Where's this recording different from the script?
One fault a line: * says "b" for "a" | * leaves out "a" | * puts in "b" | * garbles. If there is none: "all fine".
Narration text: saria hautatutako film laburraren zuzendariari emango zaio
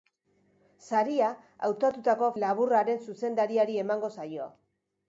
* leaves out "film"